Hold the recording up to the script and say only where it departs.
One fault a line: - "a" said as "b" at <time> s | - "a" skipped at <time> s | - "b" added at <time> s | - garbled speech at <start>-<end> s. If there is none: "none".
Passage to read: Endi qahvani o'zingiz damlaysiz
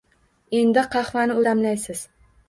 - "o'zingiz" skipped at 1.4 s